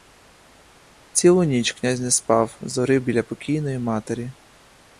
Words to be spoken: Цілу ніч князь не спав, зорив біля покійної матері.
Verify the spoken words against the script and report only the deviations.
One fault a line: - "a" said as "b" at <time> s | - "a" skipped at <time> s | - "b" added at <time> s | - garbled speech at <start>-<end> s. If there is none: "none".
none